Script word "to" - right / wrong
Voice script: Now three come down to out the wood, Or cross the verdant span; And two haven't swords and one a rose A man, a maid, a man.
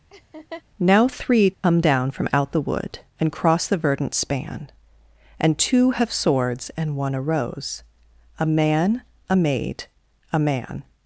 wrong